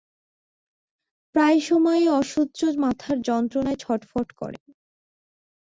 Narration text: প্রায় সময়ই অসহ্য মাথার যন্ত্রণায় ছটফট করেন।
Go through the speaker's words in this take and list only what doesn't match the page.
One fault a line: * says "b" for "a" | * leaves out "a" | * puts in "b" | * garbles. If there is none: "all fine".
all fine